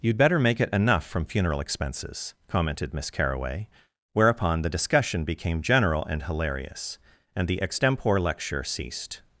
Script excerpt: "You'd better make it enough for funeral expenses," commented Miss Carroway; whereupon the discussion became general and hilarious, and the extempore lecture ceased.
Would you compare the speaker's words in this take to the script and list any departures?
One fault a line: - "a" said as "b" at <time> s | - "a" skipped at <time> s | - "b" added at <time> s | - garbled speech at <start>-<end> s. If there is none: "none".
- "for" said as "from" at 1.1 s